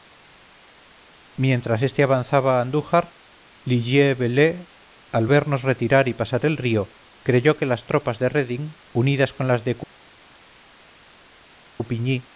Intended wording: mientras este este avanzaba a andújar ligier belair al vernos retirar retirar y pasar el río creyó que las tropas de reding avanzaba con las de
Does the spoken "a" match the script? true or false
true